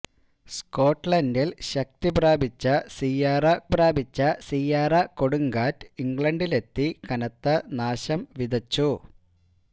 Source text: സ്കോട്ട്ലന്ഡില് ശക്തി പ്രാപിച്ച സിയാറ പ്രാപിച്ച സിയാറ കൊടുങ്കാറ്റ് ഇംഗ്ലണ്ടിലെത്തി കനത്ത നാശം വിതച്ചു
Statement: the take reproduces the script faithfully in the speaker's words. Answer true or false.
true